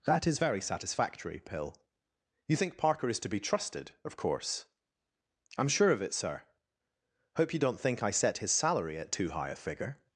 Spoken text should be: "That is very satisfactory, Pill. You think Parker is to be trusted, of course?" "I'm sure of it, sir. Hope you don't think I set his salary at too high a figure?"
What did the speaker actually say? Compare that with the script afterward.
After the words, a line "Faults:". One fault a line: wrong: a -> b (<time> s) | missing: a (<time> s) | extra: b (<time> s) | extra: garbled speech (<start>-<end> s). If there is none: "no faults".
"That is very satisfactory, Pill. You think Parker is to be trusted, of course?" "I'm sure of it, sir. Hope you don't think I set his salary at too high a figure?"
Faults:
no faults